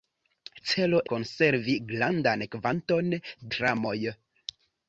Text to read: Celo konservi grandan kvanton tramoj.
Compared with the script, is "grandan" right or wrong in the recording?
right